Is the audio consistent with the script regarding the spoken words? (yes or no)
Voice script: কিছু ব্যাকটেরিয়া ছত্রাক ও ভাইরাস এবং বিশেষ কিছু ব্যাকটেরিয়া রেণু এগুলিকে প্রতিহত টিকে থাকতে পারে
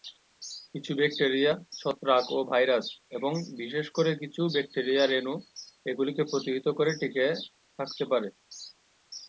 no